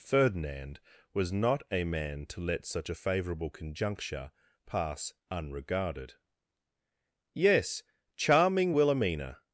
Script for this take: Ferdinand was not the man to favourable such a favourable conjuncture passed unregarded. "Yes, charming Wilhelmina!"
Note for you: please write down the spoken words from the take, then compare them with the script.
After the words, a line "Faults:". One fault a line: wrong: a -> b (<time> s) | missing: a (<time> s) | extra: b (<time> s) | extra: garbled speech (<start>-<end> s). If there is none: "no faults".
Ferdinand was not a man to let such a favourable conjuncture pass unregarded. "Yes, charming Wilhelmina!"
Faults:
wrong: the -> a (1.7 s)
wrong: favourable -> let (2.4 s)
wrong: passed -> pass (4.7 s)